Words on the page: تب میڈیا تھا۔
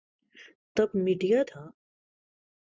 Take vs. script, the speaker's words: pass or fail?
pass